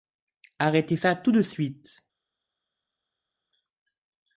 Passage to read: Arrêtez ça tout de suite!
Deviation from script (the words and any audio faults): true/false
false